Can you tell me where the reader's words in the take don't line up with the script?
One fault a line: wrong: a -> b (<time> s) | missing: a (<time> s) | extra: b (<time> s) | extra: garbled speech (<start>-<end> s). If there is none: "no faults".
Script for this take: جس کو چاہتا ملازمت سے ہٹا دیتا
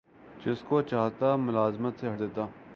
missing: ہٹا (2.1 s)